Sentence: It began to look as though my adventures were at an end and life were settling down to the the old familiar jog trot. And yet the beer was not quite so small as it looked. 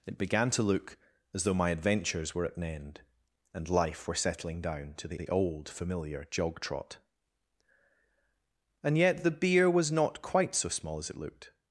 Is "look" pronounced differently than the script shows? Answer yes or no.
no